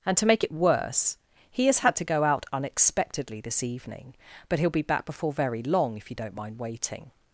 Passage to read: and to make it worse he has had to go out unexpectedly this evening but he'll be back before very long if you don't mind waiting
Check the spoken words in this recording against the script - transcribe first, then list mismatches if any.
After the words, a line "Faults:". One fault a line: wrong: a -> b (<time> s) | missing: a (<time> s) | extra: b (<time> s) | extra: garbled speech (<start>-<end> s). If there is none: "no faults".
and to make it worse he has had to go out unexpectedly this evening but he'll be back before very long if you don't mind waiting
Faults:
no faults